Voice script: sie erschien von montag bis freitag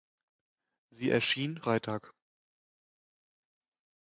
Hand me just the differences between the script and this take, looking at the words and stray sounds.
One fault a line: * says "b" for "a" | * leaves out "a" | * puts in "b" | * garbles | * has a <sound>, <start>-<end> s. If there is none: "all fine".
* leaves out "von montag bis"